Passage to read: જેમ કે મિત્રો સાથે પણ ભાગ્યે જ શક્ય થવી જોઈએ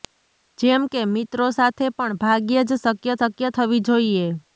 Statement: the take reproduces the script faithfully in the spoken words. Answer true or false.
false